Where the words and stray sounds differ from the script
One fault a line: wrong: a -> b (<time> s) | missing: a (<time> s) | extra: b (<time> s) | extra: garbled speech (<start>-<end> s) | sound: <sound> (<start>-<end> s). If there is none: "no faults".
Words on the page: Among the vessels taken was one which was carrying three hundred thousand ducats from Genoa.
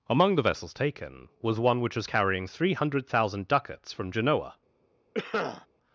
sound: cough (5.1-5.7 s)